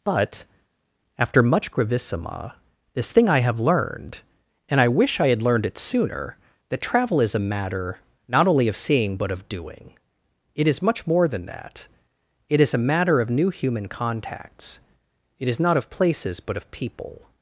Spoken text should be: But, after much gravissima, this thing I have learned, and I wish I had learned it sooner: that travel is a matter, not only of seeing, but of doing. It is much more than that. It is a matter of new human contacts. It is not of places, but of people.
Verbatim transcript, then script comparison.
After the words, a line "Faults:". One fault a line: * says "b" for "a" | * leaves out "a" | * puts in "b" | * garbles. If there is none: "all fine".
But, after much gravissima, this thing I have learned, and I wish I had learned it sooner: that travel is a matter, not only of seeing, but of doing. It is much more than that. It is a matter of new human contacts. It is not of places, but of people.
Faults:
all fine